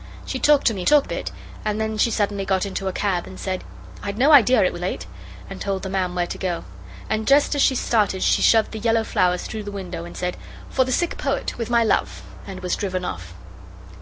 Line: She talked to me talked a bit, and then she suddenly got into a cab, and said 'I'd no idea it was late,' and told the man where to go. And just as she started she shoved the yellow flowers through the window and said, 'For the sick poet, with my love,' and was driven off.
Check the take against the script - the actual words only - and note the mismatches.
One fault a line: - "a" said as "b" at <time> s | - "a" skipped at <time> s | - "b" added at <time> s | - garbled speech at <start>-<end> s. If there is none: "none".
none